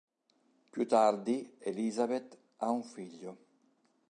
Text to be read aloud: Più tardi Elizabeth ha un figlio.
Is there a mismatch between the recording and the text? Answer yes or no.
no